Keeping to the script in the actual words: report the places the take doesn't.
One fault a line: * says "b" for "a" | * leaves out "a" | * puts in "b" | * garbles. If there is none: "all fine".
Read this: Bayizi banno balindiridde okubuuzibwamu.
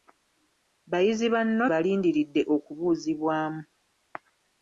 all fine